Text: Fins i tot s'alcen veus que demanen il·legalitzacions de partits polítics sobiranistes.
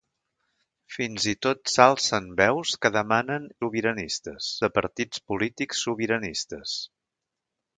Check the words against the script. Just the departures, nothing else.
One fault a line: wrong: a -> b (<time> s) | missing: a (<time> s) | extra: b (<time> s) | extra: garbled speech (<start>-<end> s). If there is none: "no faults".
wrong: il·legalitzacions -> sobiranistes (3.6 s)